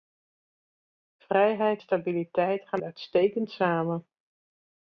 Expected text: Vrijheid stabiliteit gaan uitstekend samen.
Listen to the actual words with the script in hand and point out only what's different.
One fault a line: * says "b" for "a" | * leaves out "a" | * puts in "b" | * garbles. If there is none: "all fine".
all fine